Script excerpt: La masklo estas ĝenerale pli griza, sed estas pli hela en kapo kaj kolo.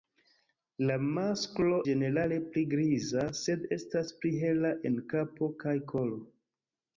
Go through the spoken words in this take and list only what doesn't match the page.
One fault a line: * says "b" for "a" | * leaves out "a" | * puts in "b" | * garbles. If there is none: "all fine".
* leaves out "estas"